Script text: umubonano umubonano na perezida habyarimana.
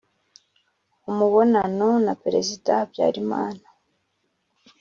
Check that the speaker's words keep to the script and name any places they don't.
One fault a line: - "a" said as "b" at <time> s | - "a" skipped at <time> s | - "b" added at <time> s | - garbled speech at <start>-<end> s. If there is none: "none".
- "umubonano" skipped at 1.9 s